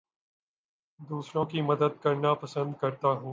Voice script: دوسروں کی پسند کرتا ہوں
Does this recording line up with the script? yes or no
no